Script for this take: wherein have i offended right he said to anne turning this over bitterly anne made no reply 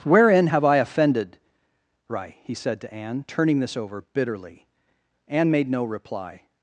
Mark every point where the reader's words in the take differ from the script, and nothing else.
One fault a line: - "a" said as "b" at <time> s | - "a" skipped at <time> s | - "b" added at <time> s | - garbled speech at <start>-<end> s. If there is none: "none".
none